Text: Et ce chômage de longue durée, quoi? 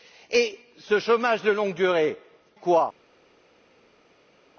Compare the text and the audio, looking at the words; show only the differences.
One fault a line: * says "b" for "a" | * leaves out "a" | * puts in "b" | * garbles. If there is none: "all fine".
all fine